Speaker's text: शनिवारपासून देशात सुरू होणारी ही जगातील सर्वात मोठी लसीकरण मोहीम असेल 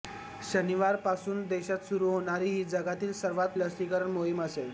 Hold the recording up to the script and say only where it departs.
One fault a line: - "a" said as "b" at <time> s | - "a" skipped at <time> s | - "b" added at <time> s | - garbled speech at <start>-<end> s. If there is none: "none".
- "मोठी" skipped at 3.6 s